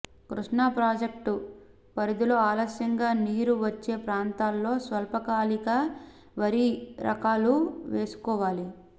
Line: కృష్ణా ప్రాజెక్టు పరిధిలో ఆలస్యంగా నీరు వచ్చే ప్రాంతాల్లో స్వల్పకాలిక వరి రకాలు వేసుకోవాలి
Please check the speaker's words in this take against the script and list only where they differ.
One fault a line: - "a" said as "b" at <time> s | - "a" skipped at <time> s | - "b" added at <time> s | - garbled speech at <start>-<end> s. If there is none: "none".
none